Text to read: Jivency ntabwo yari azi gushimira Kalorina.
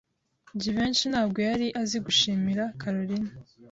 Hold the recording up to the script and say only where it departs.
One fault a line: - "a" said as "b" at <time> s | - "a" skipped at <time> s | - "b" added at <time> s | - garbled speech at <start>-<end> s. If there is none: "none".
none